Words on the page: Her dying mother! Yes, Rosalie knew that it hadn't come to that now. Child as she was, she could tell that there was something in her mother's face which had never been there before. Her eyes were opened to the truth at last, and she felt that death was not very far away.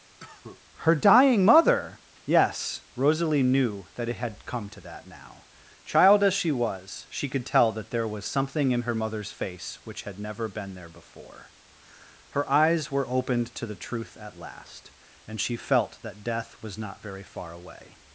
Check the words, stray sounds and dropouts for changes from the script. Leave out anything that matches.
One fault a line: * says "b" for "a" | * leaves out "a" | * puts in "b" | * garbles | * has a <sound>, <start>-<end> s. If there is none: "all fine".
* has a cough, 0.2-0.6 s
* says "had" for "hadn't"